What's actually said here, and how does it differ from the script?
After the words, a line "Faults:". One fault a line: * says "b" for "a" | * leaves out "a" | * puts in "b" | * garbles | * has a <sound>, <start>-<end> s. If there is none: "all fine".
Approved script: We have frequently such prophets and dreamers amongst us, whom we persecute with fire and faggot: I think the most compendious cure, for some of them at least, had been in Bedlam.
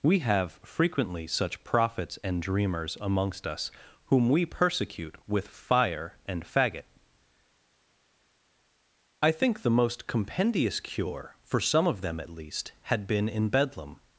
We have frequently such prophets and dreamers amongst us, whom we persecute with fire and faggot: I think the most compendious cure, for some of them at least, had been in Bedlam.
Faults:
all fine